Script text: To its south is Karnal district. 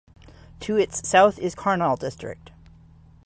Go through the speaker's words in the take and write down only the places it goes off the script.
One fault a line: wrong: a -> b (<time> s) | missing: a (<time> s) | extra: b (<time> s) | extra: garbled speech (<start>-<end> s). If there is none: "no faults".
no faults